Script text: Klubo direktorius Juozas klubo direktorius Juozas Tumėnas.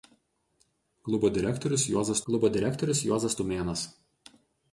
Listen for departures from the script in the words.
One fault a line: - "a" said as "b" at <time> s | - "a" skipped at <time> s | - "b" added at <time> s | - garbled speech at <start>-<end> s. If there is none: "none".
none